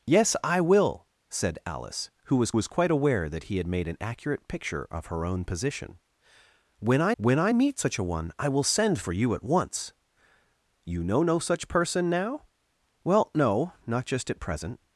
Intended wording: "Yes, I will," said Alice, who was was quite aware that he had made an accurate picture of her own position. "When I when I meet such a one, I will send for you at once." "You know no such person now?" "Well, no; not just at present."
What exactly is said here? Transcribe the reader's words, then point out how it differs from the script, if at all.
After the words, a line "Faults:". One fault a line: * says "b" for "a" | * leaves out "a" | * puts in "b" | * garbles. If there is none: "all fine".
"Yes, I will," said Alice, who was was quite aware that he had made an accurate picture of her own position. "When I when I meet such a one, I will send for you at once." "You know no such person now?" "Well, no; not just at present."
Faults:
all fine